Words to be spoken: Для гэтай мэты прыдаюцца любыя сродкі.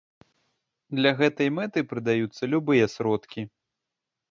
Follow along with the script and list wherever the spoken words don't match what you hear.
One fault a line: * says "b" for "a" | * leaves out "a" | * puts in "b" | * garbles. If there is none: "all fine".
all fine